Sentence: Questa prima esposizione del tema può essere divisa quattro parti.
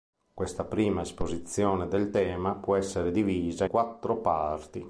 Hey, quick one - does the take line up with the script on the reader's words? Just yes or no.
yes